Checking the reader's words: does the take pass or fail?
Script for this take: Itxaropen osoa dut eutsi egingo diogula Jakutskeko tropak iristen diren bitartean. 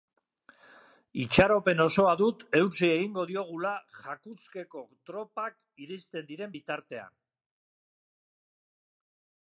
pass